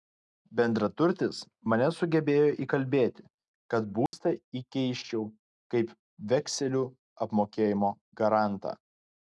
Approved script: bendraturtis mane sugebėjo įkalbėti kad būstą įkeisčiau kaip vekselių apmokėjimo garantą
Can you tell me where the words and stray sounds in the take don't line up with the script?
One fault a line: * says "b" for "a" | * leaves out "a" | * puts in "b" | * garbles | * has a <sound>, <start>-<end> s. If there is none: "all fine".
* has a dropout, 4.1-4.1 s